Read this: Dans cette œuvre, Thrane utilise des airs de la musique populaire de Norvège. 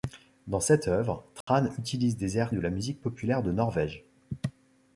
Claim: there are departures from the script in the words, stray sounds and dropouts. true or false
true